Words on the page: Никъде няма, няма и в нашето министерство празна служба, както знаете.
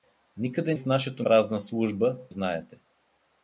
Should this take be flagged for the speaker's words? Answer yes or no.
yes